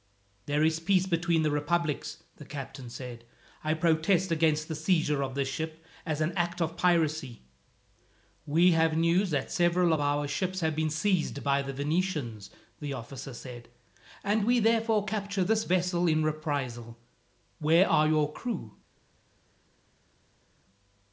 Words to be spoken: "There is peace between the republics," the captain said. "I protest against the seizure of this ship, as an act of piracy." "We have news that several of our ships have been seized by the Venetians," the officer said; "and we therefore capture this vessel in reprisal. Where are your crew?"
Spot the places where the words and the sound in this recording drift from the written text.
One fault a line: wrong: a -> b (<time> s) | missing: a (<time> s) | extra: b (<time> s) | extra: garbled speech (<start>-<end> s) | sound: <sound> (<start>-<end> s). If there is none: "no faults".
no faults